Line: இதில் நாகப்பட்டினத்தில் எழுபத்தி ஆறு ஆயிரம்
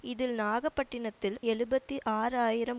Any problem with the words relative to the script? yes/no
no